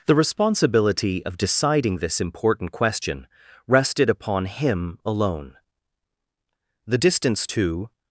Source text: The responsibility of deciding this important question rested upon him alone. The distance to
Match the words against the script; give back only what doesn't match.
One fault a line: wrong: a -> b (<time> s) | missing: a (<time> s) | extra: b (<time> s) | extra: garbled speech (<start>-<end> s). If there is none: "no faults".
no faults